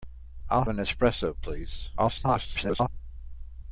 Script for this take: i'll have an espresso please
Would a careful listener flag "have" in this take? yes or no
yes